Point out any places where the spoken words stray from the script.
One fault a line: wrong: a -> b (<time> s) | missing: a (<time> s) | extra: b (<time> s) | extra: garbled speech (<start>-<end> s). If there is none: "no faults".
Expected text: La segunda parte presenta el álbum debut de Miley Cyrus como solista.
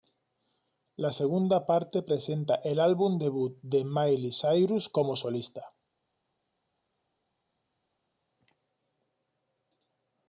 no faults